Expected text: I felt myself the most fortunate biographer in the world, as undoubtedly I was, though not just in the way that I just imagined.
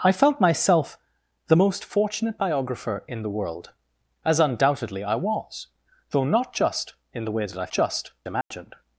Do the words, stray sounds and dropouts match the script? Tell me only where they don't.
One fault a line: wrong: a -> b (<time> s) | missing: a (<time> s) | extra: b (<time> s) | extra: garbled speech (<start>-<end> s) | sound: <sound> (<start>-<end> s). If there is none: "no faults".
sound: dropout (8.4-8.5 s)